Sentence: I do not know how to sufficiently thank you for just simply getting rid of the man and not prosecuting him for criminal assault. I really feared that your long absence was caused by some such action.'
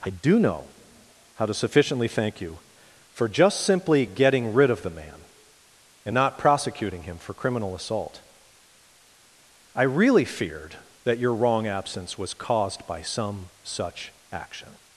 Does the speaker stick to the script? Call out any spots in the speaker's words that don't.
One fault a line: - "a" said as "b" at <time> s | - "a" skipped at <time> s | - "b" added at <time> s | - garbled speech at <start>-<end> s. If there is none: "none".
- "not" skipped at 0.4 s
- "long" said as "wrong" at 11.3 s